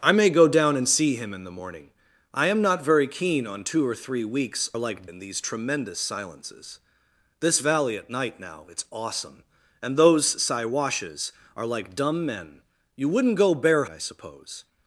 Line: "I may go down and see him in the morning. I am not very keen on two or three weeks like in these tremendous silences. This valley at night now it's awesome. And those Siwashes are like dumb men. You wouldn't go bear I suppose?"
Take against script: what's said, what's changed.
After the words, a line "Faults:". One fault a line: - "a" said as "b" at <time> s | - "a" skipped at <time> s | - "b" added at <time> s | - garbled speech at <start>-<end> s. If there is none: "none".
"I may go down and see him in the morning. I am not very keen on two or three weeks like in these tremendous silences. This valley at night now it's awesome. And those Siwashes are like dumb men. You wouldn't go bear I suppose?"
Faults:
none